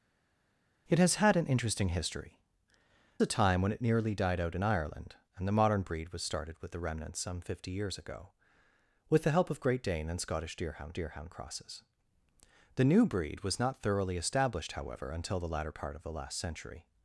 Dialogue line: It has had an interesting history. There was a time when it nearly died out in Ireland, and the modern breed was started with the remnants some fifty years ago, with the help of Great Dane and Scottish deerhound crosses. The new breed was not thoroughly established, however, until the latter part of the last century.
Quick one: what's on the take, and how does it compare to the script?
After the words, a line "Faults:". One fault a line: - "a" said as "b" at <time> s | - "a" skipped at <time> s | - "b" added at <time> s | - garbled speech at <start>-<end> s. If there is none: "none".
It has had an interesting history. A time when it nearly died out in Ireland, and the modern breed was started with the remnants some fifty years ago, with the help of Great Dane and Scottish deerhound deerhound crosses. The new breed was not thoroughly established, however, until the latter part of the last century.
Faults:
- "There was" skipped at 2.4 s
- "deerhound" added at 10.9 s